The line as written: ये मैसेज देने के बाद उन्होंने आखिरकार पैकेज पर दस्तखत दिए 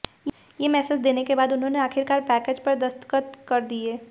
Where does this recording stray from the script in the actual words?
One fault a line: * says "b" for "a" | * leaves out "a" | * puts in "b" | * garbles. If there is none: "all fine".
* puts in "कर"